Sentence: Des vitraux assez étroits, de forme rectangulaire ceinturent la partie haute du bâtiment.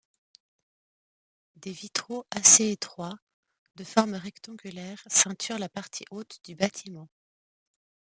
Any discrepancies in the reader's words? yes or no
no